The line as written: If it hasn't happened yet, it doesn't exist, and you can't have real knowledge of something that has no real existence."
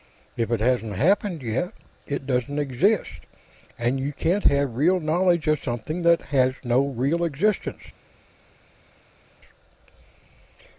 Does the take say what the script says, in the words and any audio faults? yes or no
yes